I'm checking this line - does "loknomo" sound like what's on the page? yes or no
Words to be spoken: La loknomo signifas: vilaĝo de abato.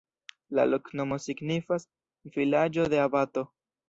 yes